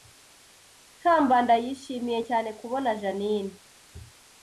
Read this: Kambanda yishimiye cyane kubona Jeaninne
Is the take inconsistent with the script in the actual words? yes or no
no